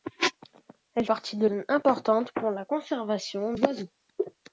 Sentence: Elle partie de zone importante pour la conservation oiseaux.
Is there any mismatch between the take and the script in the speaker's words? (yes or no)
no